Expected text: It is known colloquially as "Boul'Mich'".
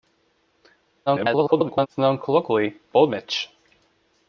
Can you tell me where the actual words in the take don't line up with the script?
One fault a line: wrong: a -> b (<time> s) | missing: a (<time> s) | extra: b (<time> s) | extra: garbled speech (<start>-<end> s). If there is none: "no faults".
extra: garbled speech (1.1-1.9 s)
missing: as (2.8 s)